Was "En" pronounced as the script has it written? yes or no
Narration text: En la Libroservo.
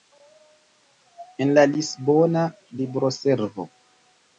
yes